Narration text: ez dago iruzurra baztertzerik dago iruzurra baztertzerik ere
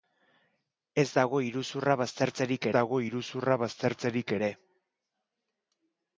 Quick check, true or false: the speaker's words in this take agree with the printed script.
true